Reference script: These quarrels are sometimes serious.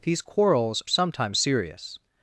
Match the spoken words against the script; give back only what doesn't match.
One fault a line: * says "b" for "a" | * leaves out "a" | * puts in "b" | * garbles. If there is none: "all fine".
* leaves out "are"